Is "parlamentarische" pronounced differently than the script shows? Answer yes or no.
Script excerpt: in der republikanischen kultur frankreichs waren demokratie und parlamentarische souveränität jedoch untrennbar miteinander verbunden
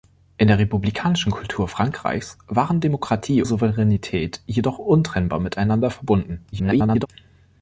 yes